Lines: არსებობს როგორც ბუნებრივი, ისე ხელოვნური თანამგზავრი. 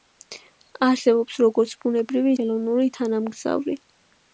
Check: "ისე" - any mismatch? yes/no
yes